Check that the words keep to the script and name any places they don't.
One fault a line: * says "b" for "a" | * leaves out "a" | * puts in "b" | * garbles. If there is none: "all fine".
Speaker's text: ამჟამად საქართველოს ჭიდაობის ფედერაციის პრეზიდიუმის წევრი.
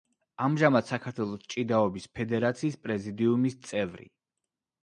all fine